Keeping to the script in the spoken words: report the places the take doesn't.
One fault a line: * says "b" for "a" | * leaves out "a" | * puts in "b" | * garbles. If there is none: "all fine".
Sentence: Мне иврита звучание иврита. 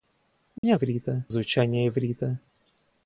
all fine